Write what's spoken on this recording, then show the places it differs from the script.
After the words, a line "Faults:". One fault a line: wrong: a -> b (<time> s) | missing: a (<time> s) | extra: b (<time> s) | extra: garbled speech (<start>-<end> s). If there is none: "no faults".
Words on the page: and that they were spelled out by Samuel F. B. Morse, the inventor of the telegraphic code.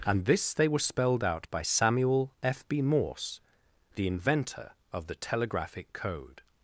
and this they were spelled out by Samuel F. B. Morse, the inventor of the telegraphic code.
Faults:
wrong: that -> this (0.2 s)